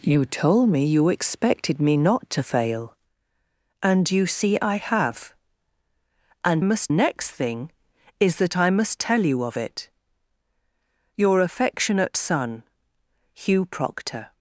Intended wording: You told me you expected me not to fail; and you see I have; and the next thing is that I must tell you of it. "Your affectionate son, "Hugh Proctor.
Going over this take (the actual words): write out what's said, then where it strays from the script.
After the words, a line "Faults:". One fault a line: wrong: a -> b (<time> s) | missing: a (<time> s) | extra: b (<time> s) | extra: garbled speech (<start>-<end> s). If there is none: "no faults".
You told me you expected me not to fail; and you see I have; and must next thing is that I must tell you of it. "Your affectionate son, "Hugh Proctor.
Faults:
wrong: the -> must (6.6 s)